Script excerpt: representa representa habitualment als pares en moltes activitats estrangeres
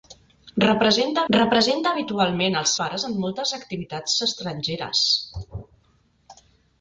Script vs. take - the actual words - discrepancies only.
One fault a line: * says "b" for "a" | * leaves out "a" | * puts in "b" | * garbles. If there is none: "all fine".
all fine